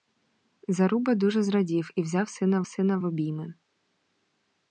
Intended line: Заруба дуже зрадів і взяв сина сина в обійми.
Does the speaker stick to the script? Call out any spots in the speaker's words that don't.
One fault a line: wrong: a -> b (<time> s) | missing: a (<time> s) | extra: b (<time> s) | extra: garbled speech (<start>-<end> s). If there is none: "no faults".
no faults